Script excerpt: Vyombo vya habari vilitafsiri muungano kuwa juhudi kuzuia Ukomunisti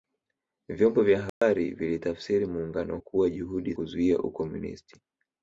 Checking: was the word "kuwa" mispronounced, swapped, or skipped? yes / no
no